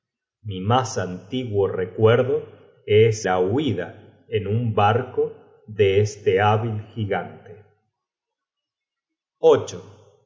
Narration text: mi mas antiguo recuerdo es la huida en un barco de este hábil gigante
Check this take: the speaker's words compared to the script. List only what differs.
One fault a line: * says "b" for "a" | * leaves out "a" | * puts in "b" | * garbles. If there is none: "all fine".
all fine